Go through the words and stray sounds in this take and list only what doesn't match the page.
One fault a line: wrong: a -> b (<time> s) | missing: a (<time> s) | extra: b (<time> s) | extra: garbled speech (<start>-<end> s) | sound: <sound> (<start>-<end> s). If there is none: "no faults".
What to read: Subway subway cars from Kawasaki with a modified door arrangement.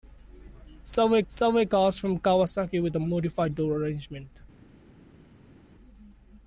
no faults